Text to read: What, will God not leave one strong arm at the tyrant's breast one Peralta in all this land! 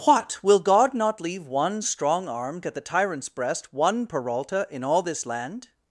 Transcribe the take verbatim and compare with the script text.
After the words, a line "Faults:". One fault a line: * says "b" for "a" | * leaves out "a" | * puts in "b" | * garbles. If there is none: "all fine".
What, will God not leave one strong arm at the tyrant's breast one Peralta in all this land!
Faults:
all fine